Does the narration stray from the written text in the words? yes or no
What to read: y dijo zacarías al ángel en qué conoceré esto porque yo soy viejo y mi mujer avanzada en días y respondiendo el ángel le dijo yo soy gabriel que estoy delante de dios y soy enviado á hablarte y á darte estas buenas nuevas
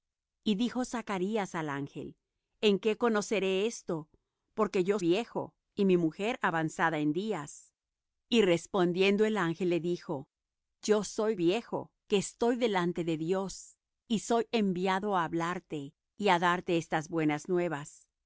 yes